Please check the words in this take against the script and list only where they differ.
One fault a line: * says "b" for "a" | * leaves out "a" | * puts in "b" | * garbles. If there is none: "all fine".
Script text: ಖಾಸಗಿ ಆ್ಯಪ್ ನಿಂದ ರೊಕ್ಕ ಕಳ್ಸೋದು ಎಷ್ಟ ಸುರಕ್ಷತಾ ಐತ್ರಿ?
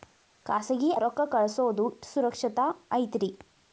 * leaves out "ಆ್ಯಪ್ ನಿಂದ"
* leaves out "ಎಷ್ಟ"